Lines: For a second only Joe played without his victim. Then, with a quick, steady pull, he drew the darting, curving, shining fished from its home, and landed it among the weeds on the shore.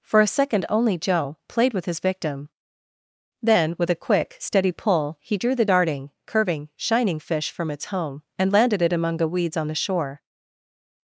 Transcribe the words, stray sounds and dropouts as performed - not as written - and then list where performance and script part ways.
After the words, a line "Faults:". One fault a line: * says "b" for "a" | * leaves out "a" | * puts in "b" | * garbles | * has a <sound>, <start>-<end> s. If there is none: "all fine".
For a second only Joe played with his victim. Then, with a quick, steady pull, he drew the darting, curving, shining fish from its home, and landed it among the weeds on the shore.
Faults:
* says "with" for "without"
* says "fish" for "fished"